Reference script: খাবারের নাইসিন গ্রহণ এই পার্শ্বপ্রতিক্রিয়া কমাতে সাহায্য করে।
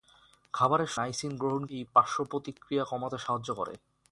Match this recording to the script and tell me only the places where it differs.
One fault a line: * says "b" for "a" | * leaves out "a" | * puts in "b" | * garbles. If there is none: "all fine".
all fine